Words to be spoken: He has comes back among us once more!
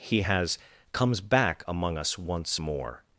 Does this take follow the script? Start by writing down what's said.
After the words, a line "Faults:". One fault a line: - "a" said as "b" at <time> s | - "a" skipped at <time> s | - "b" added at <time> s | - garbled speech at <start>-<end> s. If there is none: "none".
He has comes back among us once more!
Faults:
none